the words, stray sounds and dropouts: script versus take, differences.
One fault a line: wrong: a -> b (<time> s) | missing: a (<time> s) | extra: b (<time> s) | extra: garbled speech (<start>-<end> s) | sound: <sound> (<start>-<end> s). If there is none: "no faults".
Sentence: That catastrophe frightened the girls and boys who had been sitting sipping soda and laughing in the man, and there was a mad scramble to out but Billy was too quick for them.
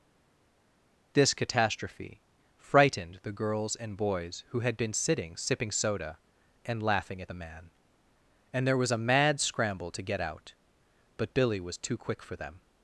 wrong: That -> This (1.1 s)
wrong: in -> at (7.2 s)
extra: get (10.0 s)